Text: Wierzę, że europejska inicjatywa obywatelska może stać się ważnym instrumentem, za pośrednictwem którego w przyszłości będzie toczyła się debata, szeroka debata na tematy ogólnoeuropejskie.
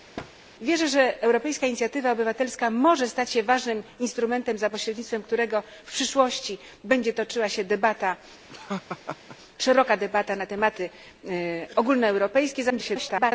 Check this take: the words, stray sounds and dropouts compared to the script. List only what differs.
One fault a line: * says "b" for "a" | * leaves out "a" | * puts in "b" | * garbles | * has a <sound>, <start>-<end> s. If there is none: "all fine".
* has a thud, 0.2-0.3 s
* has a laugh, 8.5-9.4 s
* garbles